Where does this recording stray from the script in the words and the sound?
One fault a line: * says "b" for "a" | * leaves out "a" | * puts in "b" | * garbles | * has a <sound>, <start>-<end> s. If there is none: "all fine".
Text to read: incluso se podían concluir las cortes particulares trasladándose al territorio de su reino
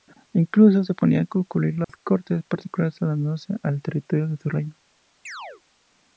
* has a dropout, 1.8-1.9 s
* has a chirp, 5.3-5.6 s